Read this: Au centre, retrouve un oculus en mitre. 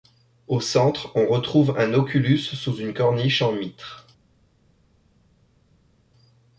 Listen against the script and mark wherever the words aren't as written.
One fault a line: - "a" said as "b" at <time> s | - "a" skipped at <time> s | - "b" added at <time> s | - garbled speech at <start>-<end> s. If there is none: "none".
- "on" added at 1.1 s
- "sous une corniche" added at 2.4 s